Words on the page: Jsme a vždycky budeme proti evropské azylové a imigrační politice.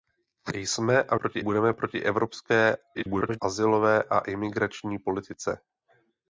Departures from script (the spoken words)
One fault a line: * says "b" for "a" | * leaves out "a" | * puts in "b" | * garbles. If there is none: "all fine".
* says "proti" for "vždycky"
* garbles